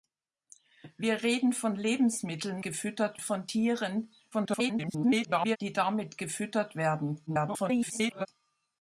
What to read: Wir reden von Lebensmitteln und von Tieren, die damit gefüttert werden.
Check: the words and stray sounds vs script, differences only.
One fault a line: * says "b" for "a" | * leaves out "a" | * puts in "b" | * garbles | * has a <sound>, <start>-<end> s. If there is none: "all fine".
* says "gefüttert" for "und"
* garbles
* garbles